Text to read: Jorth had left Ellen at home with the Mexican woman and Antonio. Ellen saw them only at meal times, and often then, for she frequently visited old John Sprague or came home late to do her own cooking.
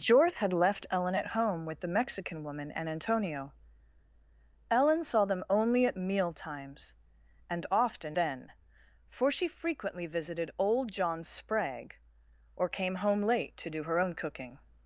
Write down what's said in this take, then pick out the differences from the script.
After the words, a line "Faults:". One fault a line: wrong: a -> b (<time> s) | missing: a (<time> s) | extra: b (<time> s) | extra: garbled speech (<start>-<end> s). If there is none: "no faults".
Jorth had left Ellen at home with the Mexican woman and Antonio. Ellen saw them only at meal times, and often then, for she frequently visited old John Sprague or came home late to do her own cooking.
Faults:
no faults